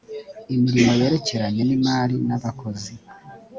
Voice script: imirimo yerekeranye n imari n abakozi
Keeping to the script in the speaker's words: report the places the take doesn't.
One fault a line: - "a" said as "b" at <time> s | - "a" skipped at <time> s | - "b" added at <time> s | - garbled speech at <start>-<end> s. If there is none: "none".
none